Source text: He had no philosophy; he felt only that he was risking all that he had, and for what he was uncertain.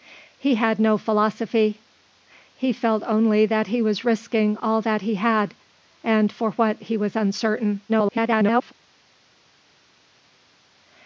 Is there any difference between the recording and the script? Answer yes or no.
yes